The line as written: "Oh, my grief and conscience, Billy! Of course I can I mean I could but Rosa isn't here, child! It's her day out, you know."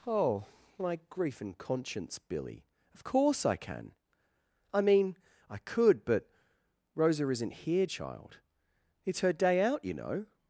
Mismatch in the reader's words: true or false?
false